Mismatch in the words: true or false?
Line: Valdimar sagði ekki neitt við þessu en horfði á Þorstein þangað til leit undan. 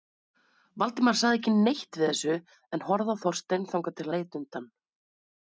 false